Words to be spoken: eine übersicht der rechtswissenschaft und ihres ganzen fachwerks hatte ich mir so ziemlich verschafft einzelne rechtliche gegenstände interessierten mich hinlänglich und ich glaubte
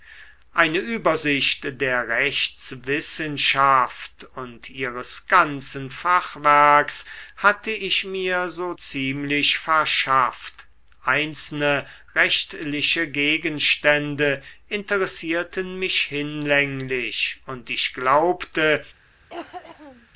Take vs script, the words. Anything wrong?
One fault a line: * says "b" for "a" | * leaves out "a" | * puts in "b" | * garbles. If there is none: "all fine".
all fine